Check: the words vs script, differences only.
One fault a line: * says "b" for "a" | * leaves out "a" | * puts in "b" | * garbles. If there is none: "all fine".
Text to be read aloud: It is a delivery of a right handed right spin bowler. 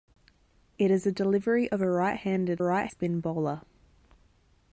all fine